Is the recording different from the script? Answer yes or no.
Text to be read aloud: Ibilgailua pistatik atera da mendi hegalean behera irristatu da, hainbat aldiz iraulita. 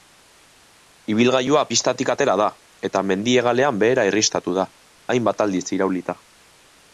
yes